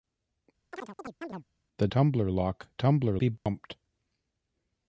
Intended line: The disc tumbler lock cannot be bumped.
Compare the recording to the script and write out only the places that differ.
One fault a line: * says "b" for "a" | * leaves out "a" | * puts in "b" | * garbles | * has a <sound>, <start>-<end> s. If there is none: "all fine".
* has a chirp, 0.7-1.4 s
* leaves out "disc"
* says "tumbler" for "cannot"
* has a dropout, 3.4-3.5 s